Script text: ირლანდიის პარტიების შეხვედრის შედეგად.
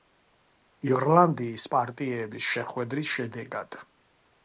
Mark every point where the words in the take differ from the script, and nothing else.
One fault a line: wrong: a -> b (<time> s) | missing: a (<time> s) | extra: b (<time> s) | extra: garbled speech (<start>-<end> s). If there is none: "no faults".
no faults